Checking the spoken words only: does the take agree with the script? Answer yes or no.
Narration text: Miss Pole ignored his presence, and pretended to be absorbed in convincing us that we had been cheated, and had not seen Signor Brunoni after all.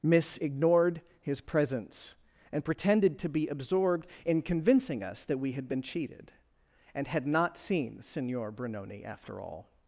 no